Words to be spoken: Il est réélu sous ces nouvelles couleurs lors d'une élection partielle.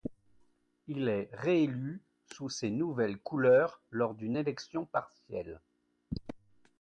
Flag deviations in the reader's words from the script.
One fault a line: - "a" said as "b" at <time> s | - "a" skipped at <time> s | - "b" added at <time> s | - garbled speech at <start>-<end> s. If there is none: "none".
none